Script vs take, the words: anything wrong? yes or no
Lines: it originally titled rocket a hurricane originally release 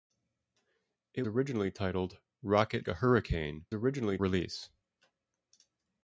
no